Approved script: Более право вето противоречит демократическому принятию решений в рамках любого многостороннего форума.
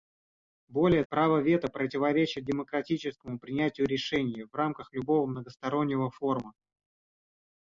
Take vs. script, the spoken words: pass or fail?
pass